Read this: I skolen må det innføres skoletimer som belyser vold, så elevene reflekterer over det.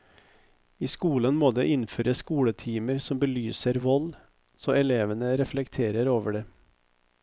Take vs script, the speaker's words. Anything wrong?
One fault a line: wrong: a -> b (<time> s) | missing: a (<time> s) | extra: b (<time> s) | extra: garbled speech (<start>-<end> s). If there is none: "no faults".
no faults